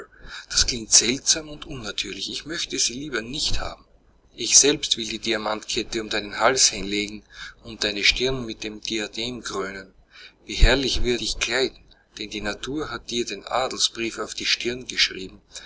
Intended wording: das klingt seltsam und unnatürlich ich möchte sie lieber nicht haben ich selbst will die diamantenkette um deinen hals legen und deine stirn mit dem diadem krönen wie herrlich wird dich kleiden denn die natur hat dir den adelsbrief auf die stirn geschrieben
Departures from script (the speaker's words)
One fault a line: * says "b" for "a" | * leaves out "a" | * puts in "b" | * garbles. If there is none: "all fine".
all fine